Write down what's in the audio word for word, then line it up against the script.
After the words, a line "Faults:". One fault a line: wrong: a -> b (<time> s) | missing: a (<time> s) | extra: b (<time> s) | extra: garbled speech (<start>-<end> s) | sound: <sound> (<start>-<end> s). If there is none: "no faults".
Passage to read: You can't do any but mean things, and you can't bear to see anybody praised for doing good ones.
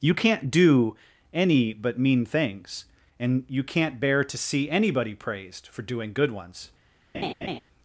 You can't do any but mean things, and you can't bear to see anybody praised for doing good ones.
Faults:
sound: laugh (7.1-7.6 s)